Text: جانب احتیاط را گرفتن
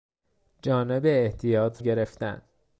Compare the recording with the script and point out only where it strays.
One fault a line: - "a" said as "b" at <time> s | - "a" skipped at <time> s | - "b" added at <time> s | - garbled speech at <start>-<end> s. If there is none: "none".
- "را" skipped at 1.8 s